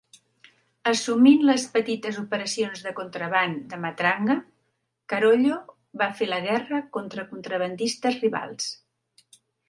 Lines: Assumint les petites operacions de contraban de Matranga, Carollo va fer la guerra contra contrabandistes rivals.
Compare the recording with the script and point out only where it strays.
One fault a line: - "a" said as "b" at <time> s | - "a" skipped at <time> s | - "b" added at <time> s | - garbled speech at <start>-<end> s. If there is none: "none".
none